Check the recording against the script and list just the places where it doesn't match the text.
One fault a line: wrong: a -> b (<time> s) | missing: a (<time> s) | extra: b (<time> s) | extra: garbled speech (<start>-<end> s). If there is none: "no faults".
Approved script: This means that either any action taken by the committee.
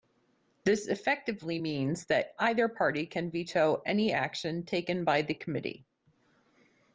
extra: effectively (0.9 s)
extra: party can veto (2.7 s)